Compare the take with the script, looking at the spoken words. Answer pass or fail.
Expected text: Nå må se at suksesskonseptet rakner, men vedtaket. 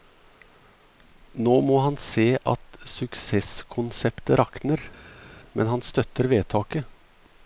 fail